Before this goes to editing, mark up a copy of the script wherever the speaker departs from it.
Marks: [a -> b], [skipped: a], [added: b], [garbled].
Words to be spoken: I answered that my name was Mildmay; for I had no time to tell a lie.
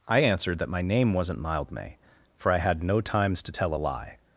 I answered that my name [was -> wasn't] Mildmay; for I had no [time -> times] to tell a lie.